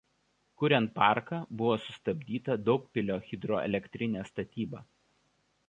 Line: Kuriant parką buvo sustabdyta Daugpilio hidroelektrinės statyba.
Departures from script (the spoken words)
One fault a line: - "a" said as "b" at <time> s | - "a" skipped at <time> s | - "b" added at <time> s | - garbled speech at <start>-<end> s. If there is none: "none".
none